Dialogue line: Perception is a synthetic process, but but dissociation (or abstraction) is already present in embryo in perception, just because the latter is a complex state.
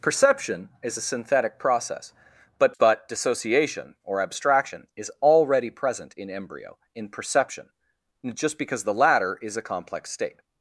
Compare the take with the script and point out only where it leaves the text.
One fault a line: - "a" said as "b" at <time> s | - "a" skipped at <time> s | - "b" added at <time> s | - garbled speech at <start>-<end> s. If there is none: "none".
none